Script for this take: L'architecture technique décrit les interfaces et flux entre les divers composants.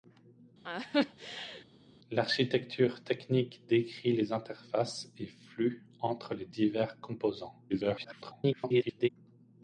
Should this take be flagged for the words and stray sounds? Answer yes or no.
yes